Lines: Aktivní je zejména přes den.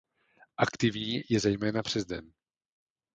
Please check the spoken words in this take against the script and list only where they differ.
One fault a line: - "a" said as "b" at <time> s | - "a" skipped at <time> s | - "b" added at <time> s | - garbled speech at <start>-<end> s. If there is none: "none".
none